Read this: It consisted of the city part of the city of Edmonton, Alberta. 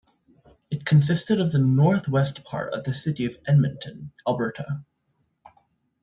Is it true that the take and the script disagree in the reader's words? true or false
true